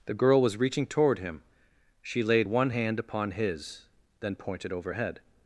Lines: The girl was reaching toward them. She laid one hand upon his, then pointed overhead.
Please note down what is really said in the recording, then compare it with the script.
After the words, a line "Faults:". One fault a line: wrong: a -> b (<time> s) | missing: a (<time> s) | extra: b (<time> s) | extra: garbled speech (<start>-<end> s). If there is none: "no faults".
The girl was reaching toward him. She laid one hand upon his, then pointed overhead.
Faults:
wrong: them -> him (1.2 s)